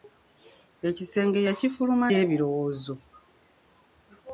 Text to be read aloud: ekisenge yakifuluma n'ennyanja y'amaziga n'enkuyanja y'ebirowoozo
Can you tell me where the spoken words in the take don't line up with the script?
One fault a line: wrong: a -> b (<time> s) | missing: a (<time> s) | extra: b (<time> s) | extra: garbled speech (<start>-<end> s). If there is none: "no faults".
missing: n'ennyanja y'amaziga n'enkuyanja (2.1 s)